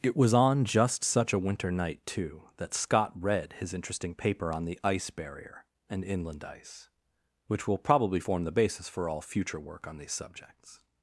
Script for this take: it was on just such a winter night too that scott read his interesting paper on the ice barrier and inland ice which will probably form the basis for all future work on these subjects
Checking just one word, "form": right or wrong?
right